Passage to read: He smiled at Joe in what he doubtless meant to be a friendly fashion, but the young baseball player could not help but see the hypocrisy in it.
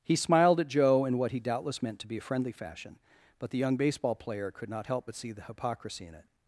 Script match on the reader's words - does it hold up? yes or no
yes